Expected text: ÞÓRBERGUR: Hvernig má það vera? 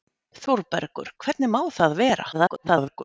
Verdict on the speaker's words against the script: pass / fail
fail